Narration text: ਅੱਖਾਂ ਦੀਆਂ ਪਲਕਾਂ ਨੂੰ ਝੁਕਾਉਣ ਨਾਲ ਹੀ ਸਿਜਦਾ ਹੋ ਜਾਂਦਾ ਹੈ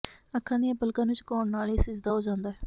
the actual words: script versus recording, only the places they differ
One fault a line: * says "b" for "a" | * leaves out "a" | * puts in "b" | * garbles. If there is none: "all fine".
all fine